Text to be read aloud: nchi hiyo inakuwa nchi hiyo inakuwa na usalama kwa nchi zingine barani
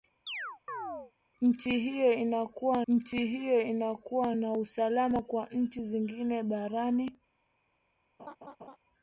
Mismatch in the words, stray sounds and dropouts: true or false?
true